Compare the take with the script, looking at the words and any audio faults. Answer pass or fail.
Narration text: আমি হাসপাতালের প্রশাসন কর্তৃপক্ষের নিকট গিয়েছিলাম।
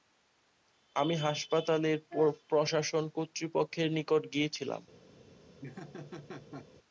fail